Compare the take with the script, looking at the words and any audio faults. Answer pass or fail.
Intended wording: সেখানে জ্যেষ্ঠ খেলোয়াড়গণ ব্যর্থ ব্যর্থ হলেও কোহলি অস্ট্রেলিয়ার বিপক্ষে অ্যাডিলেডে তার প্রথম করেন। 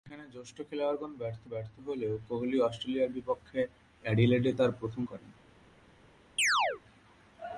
fail